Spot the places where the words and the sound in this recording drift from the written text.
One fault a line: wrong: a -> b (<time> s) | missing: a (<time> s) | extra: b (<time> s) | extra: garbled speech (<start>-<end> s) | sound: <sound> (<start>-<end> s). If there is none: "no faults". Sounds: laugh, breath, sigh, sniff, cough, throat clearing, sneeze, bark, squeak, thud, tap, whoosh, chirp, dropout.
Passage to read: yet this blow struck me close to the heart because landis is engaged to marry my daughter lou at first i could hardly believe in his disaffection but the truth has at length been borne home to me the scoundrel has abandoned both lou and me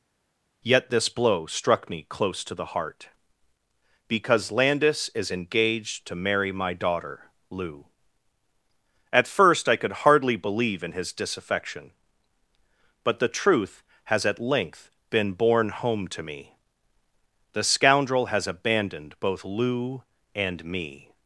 no faults